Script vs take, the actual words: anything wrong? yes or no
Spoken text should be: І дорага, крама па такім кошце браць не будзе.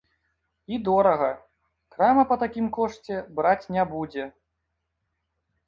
no